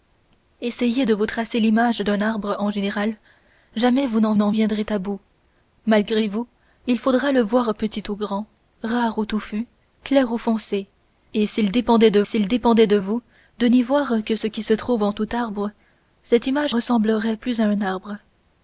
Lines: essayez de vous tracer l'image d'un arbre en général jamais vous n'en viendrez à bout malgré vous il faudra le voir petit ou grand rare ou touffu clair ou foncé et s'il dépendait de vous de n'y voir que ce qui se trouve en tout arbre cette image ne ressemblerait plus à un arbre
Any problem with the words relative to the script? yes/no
yes